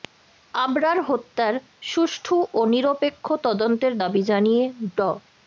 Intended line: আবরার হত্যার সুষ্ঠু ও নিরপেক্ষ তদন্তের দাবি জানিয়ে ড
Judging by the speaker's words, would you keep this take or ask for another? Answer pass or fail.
pass